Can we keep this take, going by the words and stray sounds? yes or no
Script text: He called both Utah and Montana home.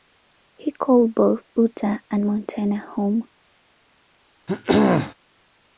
no